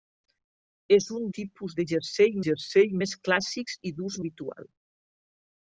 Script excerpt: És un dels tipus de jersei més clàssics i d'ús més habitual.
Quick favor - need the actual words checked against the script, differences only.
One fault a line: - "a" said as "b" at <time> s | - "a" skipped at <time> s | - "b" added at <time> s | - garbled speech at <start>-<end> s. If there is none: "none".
- "dels" skipped at 1.3 s
- "jersei" added at 2.5 s
- "més" skipped at 4.2 s